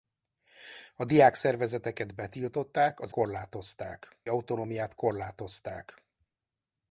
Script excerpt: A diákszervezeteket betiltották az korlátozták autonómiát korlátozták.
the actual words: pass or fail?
pass